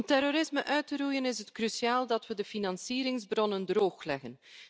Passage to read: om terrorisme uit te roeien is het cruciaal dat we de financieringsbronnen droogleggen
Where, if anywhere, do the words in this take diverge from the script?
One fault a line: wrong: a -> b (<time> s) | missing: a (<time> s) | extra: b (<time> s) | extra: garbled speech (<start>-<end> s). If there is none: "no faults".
no faults